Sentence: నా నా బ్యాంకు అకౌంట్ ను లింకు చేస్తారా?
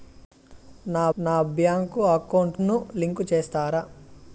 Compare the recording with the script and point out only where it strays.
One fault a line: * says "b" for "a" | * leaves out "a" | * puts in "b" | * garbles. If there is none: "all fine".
all fine